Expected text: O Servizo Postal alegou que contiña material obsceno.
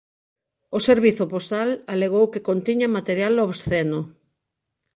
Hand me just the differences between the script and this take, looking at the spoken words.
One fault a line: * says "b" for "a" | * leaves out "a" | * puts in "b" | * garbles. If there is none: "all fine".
all fine